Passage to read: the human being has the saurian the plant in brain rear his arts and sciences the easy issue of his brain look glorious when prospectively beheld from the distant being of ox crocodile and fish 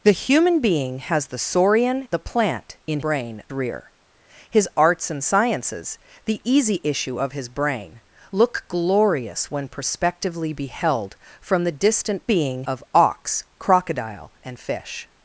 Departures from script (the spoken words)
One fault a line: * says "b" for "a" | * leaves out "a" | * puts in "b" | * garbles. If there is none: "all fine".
all fine